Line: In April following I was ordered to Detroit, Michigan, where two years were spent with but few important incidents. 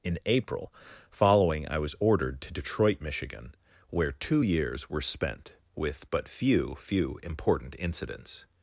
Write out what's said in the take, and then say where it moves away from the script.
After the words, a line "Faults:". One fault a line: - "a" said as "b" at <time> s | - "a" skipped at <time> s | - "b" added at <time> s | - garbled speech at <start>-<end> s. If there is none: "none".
In April following I was ordered to Detroit, Michigan, where two years were spent with but few few important incidents.
Faults:
- "few" added at 6.8 s